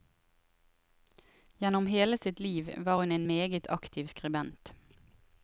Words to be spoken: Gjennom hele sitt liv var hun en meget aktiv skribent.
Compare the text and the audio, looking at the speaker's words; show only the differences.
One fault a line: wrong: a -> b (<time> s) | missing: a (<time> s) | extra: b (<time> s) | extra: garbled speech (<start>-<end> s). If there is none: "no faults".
no faults